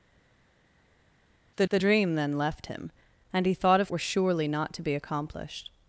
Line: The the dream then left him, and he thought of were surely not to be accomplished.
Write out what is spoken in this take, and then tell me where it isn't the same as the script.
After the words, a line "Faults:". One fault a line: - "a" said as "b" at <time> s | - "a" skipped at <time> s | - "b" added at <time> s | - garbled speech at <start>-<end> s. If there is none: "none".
The the dream then left him, and he thought of were surely not to be accomplished.
Faults:
none